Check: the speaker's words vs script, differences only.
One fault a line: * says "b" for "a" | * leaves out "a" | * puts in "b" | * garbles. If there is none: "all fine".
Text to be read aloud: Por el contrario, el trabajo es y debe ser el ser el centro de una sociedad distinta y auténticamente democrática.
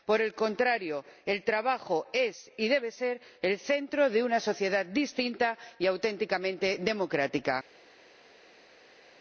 * leaves out "ser el"